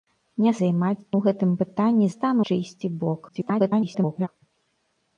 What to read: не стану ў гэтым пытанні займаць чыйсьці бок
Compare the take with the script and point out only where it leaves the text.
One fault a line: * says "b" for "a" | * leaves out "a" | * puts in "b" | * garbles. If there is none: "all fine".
* says "займаць" for "стану"
* says "стану" for "займаць"
* garbles